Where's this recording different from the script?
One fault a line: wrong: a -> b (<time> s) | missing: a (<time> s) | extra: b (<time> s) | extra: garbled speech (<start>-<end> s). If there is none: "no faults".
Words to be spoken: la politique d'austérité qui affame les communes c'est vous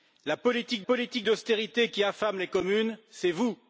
extra: politique (0.8 s)